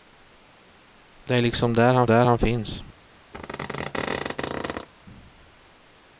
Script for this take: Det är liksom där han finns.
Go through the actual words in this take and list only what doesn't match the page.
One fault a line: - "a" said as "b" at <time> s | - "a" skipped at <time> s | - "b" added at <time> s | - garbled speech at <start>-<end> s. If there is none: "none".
- "där han" added at 2.0 s